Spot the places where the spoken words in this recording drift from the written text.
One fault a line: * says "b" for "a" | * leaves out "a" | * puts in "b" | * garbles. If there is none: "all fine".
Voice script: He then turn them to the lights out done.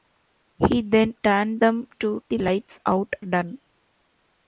all fine